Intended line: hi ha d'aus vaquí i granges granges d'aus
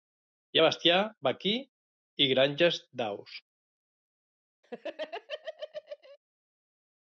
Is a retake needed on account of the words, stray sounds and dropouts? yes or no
yes